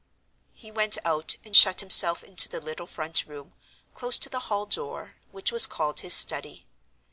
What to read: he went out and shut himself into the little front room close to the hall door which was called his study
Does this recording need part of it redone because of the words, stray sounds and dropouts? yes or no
no